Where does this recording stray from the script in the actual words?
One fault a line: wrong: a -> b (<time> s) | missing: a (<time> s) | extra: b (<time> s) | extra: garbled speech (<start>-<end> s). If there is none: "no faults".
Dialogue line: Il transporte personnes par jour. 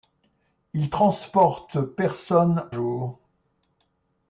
missing: par (2.7 s)